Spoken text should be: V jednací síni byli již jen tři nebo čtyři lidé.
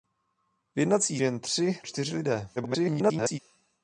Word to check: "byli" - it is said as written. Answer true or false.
false